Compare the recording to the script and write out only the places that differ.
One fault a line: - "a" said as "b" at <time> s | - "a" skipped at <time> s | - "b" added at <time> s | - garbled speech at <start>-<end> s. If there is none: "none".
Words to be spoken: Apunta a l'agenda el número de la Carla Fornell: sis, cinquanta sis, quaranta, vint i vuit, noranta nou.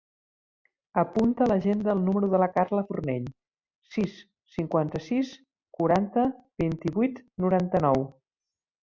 none